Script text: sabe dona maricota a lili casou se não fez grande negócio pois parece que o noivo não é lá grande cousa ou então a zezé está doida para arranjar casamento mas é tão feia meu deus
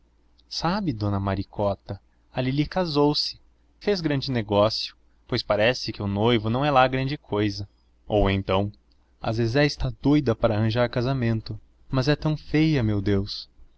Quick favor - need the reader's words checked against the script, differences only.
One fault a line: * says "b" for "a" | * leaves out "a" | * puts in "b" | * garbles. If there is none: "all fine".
* leaves out "não"